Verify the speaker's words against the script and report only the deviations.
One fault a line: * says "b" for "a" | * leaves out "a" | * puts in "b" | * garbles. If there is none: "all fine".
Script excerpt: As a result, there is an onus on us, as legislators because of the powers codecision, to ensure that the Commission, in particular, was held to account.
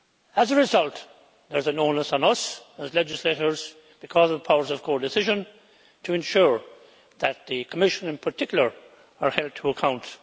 * puts in "of"
* says "is" for "was"